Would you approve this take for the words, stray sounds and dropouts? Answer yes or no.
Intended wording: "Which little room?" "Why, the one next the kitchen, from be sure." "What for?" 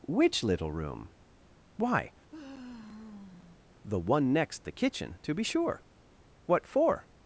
no